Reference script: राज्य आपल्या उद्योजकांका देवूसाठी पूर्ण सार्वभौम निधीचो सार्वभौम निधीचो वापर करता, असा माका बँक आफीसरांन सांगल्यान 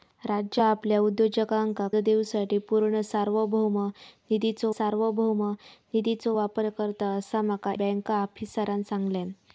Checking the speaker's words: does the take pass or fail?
pass